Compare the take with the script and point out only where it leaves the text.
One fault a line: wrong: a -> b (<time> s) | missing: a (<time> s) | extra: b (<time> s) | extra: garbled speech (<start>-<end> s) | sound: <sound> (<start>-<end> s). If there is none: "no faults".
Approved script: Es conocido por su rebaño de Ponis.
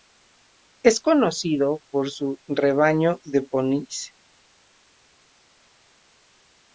no faults